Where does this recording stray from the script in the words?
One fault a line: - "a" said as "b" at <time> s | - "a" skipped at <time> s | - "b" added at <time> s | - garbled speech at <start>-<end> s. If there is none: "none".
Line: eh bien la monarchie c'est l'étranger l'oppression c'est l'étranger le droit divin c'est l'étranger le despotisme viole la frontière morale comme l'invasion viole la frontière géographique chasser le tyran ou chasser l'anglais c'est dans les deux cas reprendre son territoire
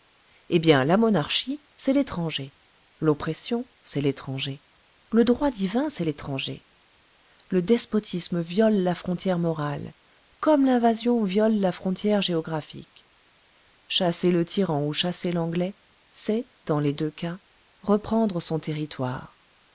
none